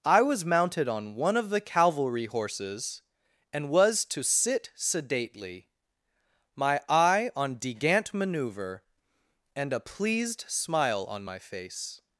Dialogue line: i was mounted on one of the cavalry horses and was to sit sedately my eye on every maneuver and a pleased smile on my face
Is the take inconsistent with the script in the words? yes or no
yes